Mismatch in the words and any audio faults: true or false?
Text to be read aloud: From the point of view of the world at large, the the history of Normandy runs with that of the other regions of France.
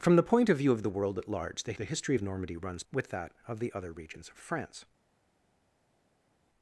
false